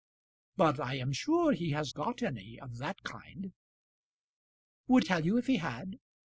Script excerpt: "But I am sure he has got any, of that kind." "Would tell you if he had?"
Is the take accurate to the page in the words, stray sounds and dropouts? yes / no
yes